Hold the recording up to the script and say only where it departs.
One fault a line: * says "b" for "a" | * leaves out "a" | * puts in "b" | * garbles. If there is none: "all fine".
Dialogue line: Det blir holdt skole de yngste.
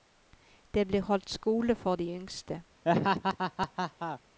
* puts in "for"